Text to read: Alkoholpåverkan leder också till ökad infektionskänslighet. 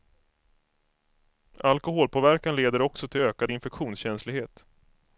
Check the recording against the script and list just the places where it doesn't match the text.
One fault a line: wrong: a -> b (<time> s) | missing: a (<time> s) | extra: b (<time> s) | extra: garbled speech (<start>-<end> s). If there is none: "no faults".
no faults